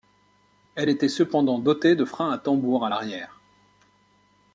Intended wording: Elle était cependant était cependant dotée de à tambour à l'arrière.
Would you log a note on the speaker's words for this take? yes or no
yes